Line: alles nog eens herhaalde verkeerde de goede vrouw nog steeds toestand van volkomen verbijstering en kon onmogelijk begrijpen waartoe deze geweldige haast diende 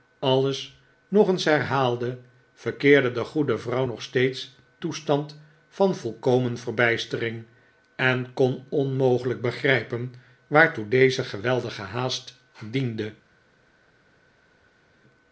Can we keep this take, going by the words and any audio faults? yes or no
yes